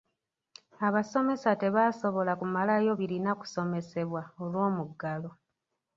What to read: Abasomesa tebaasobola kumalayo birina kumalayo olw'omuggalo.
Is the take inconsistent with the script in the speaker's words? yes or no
yes